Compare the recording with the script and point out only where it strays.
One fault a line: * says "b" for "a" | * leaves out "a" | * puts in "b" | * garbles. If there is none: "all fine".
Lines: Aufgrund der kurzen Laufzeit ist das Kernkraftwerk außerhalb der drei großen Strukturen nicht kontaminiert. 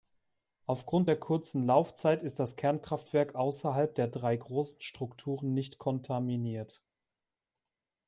all fine